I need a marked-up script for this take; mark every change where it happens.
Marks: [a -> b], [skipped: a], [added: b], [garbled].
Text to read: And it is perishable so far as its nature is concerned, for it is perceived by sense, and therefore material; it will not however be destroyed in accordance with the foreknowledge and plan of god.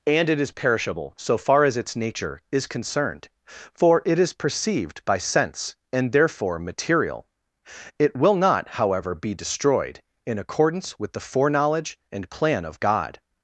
And it is perishable so far as its nature is concerned, for it is perceived by sense, and therefore material; it will not however be destroyed in accordance with the foreknowledge and plan of god.